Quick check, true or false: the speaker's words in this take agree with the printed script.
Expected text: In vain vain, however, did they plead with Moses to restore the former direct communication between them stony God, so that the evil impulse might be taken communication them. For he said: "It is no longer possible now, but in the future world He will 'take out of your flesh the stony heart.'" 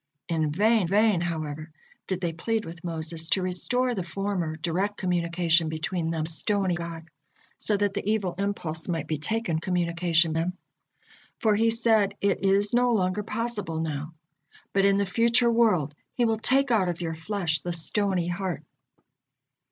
true